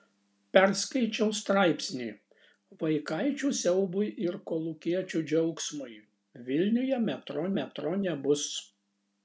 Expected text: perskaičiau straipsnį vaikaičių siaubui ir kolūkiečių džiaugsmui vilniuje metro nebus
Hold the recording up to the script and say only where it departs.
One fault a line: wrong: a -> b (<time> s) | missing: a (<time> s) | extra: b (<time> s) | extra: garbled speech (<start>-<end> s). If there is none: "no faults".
extra: metro (7.6 s)